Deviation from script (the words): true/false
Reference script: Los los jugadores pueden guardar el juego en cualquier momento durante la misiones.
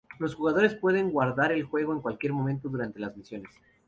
true